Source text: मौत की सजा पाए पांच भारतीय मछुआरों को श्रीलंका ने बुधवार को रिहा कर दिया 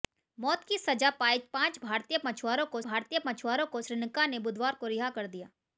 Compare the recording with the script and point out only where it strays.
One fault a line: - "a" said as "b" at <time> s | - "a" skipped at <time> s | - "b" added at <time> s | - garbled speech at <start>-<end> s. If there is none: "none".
- "भारतीय मछुआरों को" added at 2.8 s